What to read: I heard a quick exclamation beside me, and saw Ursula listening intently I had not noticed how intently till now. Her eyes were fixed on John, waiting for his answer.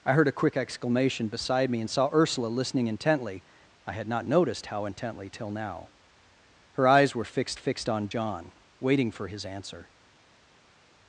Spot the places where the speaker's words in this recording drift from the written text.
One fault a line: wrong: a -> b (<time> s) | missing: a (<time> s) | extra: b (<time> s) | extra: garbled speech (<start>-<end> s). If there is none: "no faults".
extra: fixed (7.6 s)